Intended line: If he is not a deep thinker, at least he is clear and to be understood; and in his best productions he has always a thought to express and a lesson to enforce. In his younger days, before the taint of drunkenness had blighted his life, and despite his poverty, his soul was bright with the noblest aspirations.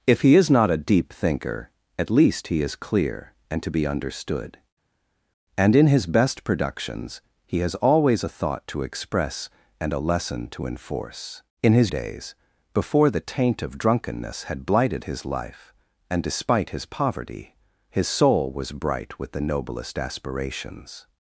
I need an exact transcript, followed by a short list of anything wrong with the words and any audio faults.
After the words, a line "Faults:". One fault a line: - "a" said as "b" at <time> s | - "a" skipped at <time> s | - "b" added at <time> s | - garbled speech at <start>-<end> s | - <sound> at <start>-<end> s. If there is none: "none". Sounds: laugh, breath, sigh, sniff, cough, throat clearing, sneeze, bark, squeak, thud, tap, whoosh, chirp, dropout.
If he is not a deep thinker, at least he is clear and to be understood; and in his best productions he has always a thought to express and a lesson to enforce. In his days, before the taint of drunkenness had blighted his life, and despite his poverty, his soul was bright with the noblest aspirations.
Faults:
- "younger" skipped at 11.9 s